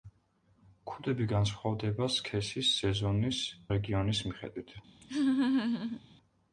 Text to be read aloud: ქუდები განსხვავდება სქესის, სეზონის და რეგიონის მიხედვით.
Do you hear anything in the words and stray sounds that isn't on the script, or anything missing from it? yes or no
yes